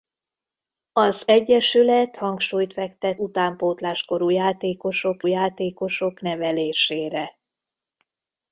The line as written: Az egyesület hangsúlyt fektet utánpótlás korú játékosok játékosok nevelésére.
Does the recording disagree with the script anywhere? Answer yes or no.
no